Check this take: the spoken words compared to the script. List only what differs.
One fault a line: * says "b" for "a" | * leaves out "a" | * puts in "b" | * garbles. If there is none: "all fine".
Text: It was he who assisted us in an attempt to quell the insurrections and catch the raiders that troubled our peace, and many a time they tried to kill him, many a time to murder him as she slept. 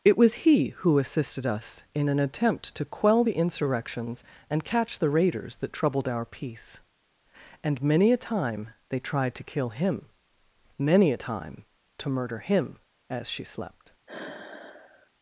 all fine